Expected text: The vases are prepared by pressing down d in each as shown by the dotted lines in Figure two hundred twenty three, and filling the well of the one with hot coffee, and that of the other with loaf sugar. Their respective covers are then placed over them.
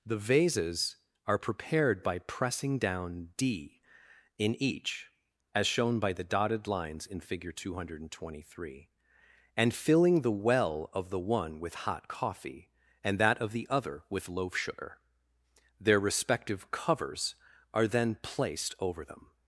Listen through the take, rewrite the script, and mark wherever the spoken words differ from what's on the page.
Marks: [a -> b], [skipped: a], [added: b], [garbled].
The vases are prepared by pressing down d in each as shown by the dotted lines in Figure two hundred twenty three, and filling the well of the one with hot coffee, and that of the other with loaf sugar. Their respective covers are then placed over them.